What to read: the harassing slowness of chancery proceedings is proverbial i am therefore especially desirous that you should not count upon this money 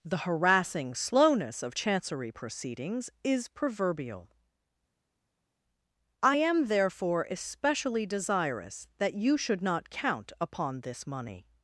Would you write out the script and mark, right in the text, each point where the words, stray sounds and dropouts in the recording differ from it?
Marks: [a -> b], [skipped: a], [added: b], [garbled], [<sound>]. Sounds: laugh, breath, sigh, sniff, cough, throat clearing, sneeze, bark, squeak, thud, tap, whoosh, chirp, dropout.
the harassing slowness of chancery proceedings is proverbial i am therefore especially desirous that you should not count upon this money